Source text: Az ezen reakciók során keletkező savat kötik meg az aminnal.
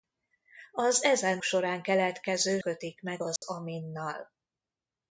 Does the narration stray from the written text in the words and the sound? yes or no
yes